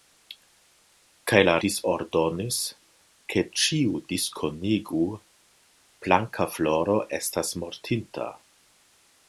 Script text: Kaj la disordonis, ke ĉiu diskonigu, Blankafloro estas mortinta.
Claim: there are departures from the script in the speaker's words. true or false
false